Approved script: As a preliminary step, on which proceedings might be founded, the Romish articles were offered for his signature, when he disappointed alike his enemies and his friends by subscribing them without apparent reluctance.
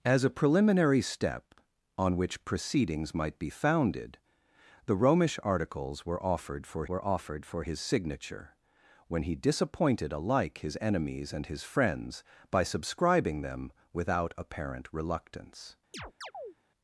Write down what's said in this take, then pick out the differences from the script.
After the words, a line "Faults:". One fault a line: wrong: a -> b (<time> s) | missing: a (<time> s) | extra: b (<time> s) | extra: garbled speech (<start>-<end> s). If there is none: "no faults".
As a preliminary step, on which proceedings might be founded, the Romish articles were offered for were offered for his signature, when he disappointed alike his enemies and his friends by subscribing them without apparent reluctance.
Faults:
extra: were offered for (6.9 s)